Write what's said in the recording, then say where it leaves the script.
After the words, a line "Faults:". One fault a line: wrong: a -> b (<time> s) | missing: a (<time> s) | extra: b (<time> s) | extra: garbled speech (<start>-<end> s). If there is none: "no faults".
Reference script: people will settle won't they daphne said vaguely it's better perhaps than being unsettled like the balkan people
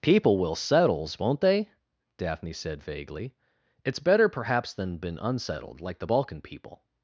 people will settles won't they daphne said vaguely it's better perhaps than been unsettled like the balkan people
Faults:
wrong: settle -> settles (0.6 s)
wrong: being -> been (5.0 s)